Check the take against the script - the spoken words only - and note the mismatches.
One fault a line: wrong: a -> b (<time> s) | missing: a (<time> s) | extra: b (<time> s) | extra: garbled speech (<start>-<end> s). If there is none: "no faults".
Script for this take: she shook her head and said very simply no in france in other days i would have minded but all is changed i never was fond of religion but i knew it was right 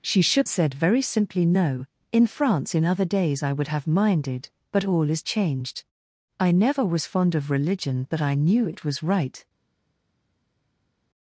missing: her head and (0.5 s)